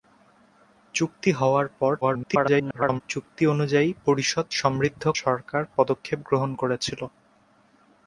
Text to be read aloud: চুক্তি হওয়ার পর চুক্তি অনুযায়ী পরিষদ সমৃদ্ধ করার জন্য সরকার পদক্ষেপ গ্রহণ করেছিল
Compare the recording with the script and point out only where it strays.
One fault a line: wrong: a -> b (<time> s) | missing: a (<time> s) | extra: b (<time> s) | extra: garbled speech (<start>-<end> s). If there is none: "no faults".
extra: garbled speech (2.0-3.0 s)
missing: করার জন্য (5.0 s)